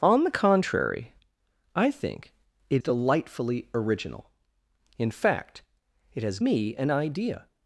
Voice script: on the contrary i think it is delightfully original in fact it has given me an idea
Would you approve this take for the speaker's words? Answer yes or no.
no